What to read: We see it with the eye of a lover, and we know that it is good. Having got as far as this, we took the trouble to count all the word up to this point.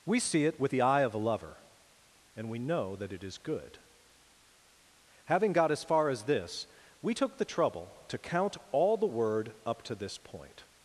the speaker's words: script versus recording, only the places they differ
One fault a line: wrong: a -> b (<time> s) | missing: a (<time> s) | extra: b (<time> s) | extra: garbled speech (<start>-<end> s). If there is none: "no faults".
no faults